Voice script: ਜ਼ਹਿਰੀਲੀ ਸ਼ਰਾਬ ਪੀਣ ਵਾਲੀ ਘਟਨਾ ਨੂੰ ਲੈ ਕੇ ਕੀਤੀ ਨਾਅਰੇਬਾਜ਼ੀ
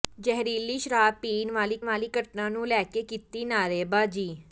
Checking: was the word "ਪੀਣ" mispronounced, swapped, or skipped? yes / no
no